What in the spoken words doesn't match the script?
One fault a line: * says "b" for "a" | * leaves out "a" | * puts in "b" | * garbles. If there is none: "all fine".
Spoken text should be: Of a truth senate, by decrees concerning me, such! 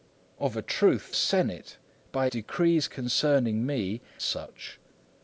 all fine